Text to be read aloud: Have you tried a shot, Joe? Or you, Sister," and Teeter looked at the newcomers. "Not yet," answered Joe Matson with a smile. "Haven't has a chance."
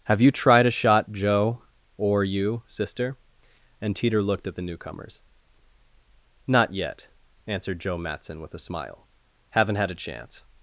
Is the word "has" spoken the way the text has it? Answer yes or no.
no